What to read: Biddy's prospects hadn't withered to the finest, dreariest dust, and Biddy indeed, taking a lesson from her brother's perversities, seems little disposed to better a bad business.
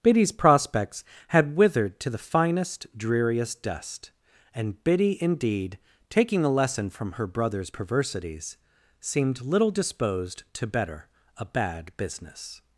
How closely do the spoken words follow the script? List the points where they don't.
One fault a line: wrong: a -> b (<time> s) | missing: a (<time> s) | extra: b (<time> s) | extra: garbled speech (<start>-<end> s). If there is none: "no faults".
wrong: hadn't -> had (1.3 s)
wrong: seems -> seemed (9.0 s)